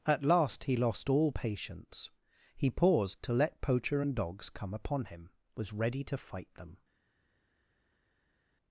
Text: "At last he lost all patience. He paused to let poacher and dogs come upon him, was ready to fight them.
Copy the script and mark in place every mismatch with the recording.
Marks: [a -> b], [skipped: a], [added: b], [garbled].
"At last he lost all patience. He paused to let poacher and dogs come upon him, was ready to fight them.